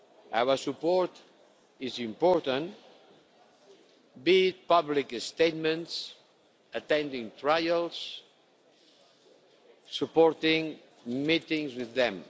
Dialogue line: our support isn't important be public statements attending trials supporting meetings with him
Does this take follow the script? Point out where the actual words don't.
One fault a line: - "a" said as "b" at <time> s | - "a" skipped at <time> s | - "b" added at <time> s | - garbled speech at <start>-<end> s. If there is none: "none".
- "isn't" said as "is" at 1.8 s
- "it" added at 4.5 s
- "him" said as "them" at 11.9 s